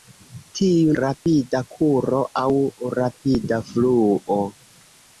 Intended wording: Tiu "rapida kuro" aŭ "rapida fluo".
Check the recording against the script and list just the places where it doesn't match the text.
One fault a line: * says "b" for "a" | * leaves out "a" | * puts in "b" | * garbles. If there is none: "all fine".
all fine